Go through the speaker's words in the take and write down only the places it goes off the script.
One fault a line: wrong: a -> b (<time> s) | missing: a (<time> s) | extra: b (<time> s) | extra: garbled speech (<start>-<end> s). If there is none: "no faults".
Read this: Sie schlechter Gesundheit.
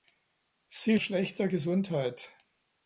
no faults